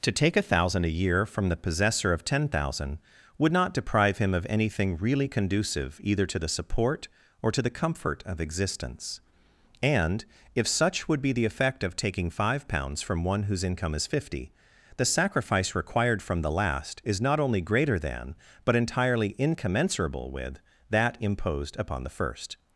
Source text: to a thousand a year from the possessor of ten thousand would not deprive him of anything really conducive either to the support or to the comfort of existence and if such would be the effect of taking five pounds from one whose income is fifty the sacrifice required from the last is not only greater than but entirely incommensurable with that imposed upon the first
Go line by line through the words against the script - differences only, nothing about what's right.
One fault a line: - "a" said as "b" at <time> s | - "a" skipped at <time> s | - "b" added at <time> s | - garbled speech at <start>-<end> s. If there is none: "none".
- "take" added at 0.1 s